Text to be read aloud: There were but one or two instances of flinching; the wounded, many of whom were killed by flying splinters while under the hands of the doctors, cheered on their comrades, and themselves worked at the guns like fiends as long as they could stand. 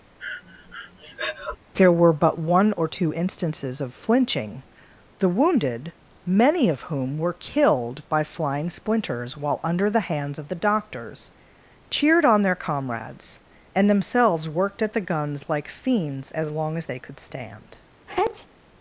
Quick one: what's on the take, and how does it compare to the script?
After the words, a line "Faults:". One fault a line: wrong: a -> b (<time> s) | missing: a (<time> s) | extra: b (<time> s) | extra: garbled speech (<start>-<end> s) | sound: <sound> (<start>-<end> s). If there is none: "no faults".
There were but one or two instances of flinching; the wounded, many of whom were killed by flying splinters while under the hands of the doctors, cheered on their comrades, and themselves worked at the guns like fiends as long as they could stand.
Faults:
sound: breath (0.2-1.6 s)
sound: sneeze (18.1-18.5 s)